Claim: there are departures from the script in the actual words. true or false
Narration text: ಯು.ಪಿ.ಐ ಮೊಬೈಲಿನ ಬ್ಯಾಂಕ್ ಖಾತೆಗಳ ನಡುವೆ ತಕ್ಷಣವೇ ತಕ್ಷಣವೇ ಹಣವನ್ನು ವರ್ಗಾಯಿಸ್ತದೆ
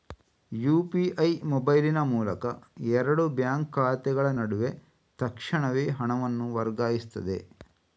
true